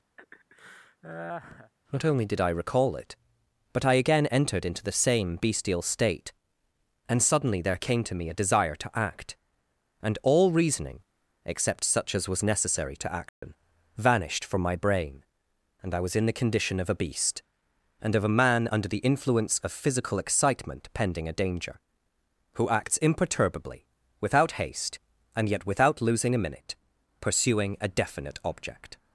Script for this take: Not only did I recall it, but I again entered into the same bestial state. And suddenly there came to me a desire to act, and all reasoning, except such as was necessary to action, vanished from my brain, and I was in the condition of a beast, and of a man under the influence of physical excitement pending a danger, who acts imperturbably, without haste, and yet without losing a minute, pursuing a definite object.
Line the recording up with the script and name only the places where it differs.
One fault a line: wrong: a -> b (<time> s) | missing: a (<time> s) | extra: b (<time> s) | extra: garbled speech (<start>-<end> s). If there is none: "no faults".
no faults